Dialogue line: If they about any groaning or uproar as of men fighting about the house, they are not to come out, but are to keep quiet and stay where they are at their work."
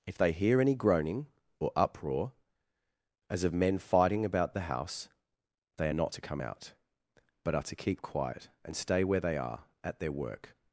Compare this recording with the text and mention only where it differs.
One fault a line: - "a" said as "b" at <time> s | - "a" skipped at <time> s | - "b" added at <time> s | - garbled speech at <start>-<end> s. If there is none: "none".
- "about" said as "hear" at 0.3 s